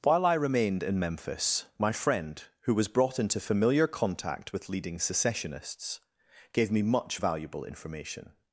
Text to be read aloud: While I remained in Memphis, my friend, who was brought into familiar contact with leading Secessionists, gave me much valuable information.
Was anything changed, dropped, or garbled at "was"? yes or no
no